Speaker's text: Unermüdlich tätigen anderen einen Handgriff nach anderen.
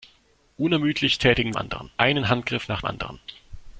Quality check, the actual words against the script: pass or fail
pass